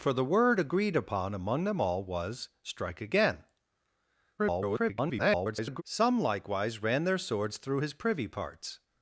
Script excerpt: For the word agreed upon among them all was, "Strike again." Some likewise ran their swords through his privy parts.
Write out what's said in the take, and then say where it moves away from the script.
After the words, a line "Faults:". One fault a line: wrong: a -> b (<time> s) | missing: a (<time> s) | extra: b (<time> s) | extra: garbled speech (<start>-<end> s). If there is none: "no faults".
For the word agreed upon among them all was, "Strike again." [garbled] Some likewise ran their swords through his privy parts.
Faults:
extra: garbled speech (4.4-5.8 s)